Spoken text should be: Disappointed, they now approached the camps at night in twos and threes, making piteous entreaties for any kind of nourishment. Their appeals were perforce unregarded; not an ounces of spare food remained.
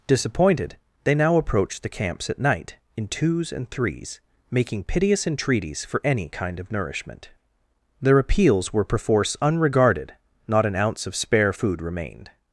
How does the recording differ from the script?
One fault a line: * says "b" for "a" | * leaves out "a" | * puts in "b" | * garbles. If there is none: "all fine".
* says "ounce" for "ounces"